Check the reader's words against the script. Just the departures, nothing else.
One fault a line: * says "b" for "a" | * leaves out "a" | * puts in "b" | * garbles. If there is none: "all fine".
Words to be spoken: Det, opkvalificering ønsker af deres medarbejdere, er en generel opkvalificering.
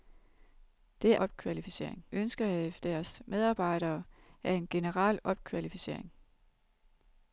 all fine